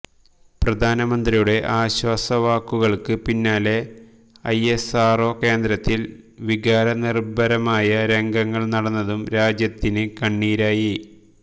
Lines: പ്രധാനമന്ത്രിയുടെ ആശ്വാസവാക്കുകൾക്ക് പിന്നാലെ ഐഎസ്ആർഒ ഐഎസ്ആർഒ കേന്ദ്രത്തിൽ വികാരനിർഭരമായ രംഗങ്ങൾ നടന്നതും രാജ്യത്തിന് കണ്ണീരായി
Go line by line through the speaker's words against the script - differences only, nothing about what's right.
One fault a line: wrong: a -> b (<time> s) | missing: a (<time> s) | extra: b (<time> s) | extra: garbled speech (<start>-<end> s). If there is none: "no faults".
missing: ഐഎസ്ആർഒ (5.3 s)